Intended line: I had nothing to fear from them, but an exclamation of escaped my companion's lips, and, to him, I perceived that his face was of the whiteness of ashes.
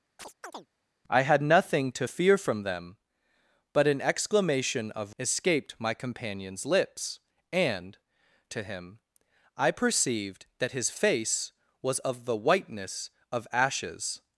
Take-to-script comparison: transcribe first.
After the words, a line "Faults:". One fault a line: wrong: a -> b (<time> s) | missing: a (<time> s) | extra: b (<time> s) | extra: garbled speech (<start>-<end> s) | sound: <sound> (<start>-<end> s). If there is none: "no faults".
I had nothing to fear from them, but an exclamation of escaped my companion's lips, and, to him, I perceived that his face was of the whiteness of ashes.
Faults:
sound: chirp (0.2-0.7 s)